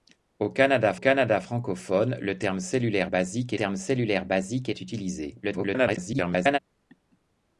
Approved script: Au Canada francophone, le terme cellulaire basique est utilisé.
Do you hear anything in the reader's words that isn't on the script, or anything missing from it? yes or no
yes